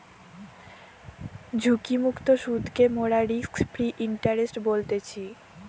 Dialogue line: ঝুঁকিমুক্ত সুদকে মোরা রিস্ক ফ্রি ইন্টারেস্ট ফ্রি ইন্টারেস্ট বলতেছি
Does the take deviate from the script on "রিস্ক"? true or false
false